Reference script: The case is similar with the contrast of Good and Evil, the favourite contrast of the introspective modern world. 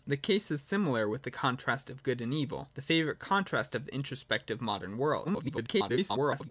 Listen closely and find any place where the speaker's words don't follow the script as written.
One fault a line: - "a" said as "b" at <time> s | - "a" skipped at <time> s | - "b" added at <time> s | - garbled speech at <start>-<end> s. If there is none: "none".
- garbled speech at 5.2-6.5 s